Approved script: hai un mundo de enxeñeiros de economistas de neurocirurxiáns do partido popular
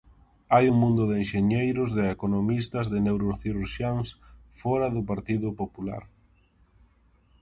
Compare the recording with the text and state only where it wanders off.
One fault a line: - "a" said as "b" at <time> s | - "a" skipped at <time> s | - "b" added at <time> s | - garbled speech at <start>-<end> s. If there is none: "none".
- "fóra" added at 4.6 s